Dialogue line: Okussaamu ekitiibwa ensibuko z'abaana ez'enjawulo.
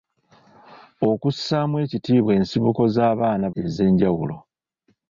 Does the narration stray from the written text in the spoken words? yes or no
no